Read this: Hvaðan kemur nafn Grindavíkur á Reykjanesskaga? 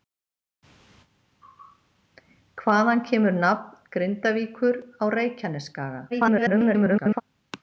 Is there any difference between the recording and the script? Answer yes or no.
yes